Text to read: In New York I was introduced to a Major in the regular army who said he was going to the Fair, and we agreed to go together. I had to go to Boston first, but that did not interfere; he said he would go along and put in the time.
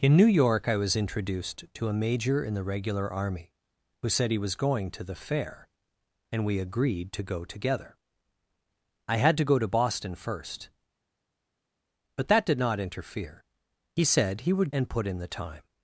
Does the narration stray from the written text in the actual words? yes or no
yes